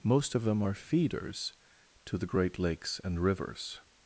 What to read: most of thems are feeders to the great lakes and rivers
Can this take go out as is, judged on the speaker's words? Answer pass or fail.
fail